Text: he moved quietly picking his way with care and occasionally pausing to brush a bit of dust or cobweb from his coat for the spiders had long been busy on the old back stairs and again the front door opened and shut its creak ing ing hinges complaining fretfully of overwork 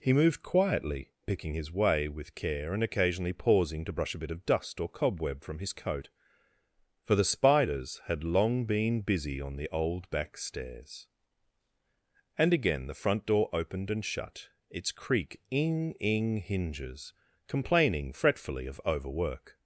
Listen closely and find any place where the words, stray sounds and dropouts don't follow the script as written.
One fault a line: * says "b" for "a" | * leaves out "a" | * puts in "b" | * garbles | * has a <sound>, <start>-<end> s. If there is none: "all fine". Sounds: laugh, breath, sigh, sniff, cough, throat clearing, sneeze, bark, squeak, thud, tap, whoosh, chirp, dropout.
all fine